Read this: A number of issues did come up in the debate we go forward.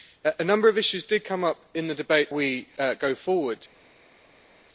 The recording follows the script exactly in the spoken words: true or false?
true